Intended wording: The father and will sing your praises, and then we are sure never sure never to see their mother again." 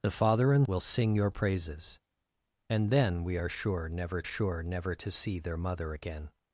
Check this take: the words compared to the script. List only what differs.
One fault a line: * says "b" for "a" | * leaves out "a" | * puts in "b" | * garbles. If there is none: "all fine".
all fine